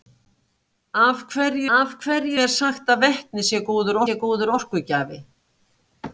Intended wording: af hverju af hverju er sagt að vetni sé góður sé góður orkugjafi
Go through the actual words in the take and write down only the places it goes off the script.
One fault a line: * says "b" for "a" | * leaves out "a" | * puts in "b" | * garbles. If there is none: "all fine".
all fine